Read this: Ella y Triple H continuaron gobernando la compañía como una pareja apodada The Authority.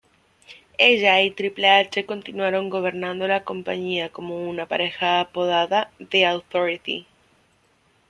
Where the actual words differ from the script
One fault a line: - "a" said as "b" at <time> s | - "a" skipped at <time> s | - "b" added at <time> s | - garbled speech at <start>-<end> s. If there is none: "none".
none